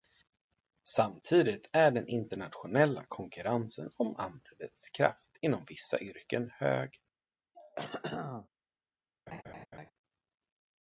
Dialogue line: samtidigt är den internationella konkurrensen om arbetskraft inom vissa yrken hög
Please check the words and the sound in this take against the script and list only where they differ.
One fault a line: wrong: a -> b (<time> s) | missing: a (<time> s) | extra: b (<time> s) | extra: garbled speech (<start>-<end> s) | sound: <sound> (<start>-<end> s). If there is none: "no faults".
sound: throat clearing (7.5-8.5 s)
sound: laugh (9.3-9.9 s)